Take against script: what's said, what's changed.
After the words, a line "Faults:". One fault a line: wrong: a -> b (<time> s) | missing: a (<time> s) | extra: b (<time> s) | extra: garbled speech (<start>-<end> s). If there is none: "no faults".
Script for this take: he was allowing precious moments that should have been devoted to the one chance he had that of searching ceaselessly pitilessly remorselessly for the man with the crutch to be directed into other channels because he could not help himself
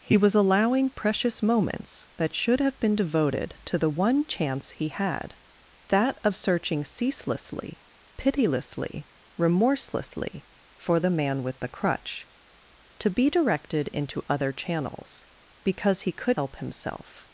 he was allowing precious moments that should have been devoted to the one chance he had that of searching ceaselessly pitilessly remorselessly for the man with the crutch to be directed into other channels because he could help himself
Faults:
missing: not (16.4 s)